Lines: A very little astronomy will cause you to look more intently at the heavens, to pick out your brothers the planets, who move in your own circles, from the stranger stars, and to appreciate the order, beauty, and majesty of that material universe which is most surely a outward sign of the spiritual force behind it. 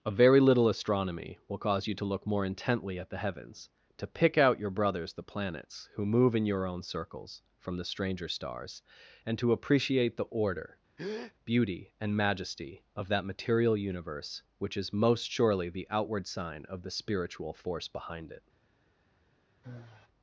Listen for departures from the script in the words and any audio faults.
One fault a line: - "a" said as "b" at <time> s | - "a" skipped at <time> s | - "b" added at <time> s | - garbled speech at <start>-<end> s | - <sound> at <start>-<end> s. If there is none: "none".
- breath at 11.0-11.3 s
- "a" said as "the" at 15.7 s
- sigh at 19.6-20.1 s